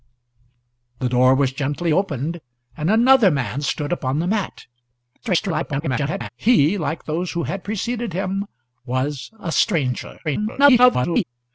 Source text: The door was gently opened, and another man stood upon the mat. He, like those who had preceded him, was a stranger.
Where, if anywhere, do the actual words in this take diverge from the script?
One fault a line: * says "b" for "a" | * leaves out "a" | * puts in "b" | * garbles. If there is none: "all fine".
* garbles
* garbles